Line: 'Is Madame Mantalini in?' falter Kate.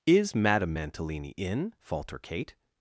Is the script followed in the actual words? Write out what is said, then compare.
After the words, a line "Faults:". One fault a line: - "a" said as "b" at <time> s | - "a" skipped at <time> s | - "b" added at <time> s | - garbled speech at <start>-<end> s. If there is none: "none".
'Is Madame Mantalini in?' falter Kate.
Faults:
none